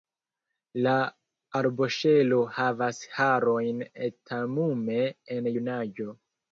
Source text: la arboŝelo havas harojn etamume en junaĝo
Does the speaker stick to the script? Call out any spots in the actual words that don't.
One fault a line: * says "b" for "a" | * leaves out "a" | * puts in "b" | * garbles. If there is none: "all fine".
all fine